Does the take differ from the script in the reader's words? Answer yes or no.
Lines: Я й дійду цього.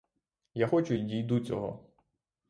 yes